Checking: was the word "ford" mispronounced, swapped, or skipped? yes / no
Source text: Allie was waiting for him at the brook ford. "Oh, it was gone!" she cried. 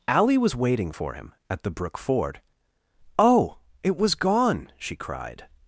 no